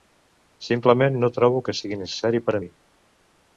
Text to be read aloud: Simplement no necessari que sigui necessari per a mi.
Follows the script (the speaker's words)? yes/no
no